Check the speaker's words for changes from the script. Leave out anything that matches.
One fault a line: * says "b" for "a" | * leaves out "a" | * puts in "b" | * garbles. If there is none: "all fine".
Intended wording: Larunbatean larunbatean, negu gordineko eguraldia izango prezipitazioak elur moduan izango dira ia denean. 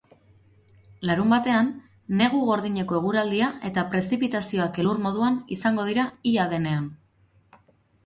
* leaves out "larunbatean"
* says "eta" for "izango"